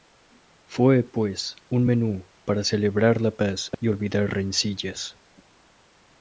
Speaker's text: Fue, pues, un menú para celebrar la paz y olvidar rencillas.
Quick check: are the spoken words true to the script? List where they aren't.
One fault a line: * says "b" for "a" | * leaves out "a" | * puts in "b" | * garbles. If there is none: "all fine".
all fine